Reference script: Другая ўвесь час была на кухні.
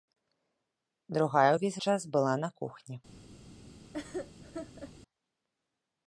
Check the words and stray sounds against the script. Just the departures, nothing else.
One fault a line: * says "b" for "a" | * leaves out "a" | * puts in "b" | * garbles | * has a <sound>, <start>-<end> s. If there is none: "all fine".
* has a laugh, 3.9-4.9 s